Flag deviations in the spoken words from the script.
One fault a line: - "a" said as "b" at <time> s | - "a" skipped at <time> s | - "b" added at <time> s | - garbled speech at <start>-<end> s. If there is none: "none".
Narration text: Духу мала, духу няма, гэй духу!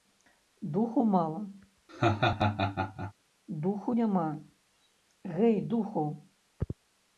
none